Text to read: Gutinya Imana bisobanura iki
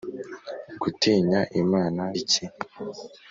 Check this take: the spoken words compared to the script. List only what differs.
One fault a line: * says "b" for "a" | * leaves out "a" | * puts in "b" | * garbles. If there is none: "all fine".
* leaves out "bisobanura"